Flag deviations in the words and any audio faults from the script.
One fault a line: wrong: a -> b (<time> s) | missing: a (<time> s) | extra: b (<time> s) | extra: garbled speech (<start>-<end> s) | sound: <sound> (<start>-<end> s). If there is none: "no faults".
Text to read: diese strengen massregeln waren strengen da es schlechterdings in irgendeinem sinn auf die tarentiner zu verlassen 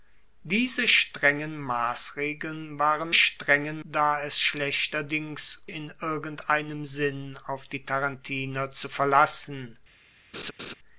sound: laugh (10.3-10.7 s)